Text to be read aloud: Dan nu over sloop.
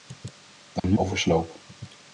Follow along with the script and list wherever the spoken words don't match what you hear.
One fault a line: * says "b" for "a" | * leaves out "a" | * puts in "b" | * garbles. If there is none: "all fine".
all fine